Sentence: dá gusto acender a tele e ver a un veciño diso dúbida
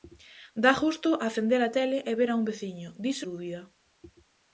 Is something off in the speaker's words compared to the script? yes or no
no